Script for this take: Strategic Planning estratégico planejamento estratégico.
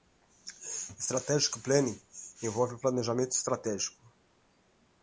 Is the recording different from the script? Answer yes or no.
yes